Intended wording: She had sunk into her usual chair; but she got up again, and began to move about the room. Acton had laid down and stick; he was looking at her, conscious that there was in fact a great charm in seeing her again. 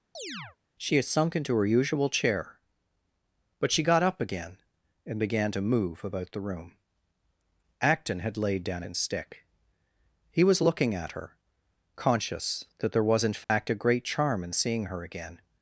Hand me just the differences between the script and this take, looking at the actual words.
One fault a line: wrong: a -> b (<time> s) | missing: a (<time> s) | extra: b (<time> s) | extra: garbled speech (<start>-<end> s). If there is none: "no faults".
no faults